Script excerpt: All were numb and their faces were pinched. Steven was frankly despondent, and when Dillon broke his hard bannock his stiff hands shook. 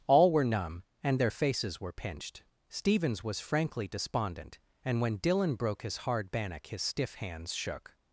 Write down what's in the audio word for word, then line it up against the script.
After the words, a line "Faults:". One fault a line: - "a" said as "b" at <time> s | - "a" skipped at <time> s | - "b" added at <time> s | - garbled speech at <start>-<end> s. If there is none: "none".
All were numb and their faces were pinched. Stevens was frankly despondent, and when Dillon broke his hard bannock his stiff hands shook.
Faults:
- "Steven" said as "Stevens" at 2.7 s